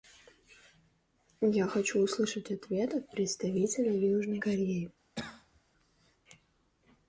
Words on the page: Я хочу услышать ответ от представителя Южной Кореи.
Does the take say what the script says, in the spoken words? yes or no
yes